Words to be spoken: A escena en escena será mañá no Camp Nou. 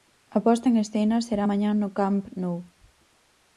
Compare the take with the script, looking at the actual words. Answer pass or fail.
fail